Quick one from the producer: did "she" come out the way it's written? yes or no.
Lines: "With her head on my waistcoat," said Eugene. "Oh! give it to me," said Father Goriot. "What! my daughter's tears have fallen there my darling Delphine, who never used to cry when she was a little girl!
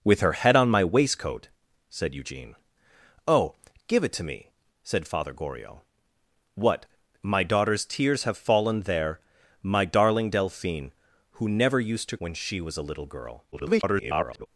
yes